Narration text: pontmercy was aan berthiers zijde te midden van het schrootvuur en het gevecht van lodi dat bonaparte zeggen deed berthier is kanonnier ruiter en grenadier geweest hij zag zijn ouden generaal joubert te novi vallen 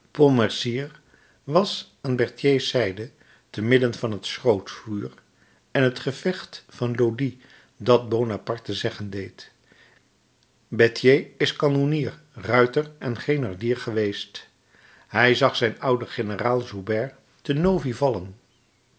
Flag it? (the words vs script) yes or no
no